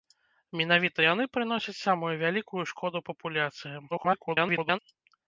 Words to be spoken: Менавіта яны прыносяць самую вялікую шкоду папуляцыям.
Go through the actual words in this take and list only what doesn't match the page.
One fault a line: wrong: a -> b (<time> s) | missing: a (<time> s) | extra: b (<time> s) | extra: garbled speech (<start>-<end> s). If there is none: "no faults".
extra: garbled speech (3.9-4.8 s)